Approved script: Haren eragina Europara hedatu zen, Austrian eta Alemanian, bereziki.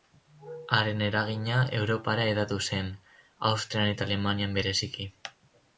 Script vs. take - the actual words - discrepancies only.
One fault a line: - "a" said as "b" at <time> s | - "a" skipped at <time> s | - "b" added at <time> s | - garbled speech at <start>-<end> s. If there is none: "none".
none